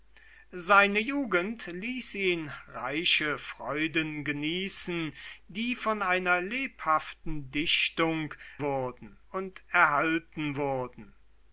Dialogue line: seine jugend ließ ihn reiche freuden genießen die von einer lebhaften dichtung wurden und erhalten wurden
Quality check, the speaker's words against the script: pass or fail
pass